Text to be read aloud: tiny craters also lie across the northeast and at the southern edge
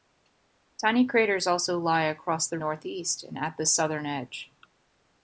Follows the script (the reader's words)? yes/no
yes